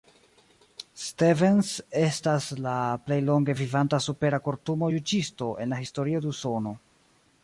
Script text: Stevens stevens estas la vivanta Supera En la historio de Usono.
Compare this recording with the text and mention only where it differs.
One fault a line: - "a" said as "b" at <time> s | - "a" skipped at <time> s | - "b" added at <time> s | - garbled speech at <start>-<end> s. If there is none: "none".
- "stevens" skipped at 1.7 s
- "plej longe" added at 3.1 s
- "Kortumo juĝisto" added at 4.5 s